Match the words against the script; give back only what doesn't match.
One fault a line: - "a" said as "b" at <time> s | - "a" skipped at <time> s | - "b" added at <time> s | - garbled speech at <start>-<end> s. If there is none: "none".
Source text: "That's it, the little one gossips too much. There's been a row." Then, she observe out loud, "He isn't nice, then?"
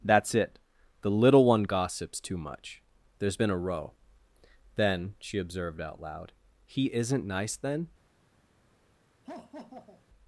- "observe" said as "observed" at 5.4 s